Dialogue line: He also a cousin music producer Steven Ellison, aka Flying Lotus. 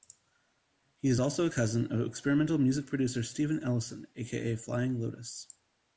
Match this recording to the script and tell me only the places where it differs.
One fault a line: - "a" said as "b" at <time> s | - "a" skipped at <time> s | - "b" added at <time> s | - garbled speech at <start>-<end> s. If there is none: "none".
- "is" added at 1.1 s
- "of experimental" added at 1.9 s